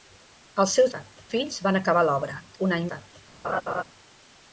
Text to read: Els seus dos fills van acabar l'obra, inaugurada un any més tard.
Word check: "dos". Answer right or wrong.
wrong